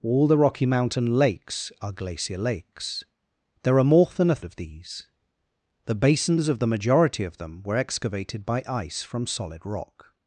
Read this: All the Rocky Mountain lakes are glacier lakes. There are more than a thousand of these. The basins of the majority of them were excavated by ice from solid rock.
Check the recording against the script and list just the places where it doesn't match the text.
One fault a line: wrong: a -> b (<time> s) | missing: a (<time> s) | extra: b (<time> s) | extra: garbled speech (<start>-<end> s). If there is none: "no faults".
missing: thousand (4.4 s)